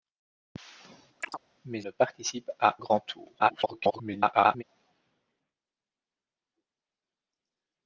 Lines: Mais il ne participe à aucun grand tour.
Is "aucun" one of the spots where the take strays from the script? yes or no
yes